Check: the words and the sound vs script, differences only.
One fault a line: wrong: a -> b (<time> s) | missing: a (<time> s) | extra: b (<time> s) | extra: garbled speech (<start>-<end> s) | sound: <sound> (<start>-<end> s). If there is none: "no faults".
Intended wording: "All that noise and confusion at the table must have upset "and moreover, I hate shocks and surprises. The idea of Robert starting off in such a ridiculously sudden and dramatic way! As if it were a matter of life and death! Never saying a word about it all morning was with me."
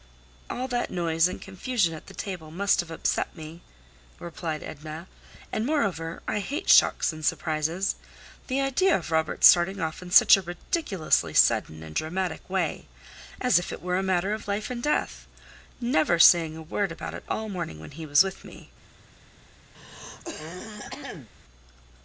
extra: me replied Edna (3.4 s)
extra: when he (17.8 s)
sound: throat clearing (19.7-21.3 s)